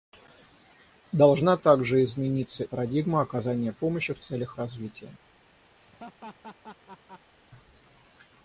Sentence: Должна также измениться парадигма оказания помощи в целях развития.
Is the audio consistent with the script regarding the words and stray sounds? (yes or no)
no